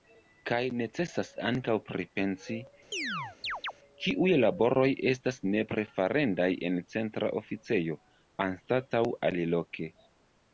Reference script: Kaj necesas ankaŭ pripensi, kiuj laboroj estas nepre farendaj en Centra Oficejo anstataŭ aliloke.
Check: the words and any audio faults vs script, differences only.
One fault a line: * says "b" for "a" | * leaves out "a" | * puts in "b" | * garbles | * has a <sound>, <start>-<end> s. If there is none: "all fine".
* has a chirp, 2.9-3.7 s